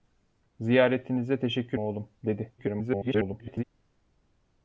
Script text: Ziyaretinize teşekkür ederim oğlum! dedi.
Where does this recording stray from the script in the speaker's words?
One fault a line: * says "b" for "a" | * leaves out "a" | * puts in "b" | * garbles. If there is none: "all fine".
* leaves out "ederim"
* garbles